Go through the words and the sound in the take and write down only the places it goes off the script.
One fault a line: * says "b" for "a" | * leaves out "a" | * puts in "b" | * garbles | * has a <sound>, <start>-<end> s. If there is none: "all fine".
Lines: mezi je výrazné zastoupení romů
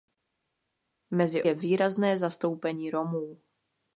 all fine